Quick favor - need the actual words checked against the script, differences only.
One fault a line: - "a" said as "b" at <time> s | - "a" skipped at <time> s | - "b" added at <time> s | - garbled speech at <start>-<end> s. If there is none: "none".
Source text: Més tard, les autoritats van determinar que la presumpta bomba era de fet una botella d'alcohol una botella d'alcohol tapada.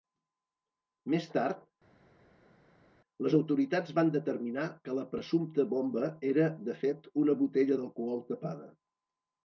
- "una botella d'alcohol" skipped at 8.2 s